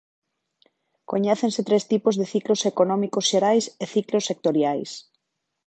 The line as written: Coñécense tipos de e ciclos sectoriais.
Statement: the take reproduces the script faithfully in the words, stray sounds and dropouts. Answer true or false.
false